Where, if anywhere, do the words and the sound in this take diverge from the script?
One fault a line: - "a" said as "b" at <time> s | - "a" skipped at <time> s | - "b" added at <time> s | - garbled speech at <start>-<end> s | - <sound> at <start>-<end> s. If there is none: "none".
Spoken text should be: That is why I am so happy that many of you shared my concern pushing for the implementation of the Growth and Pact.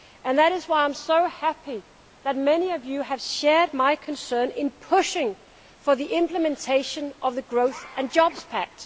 - "have" added at 3.0 s
- "in" added at 4.5 s
- "Jobs" added at 8.1 s